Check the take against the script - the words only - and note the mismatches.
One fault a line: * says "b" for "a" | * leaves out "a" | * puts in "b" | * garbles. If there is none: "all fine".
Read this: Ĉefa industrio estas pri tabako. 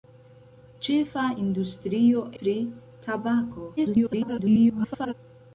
* leaves out "estas"
* garbles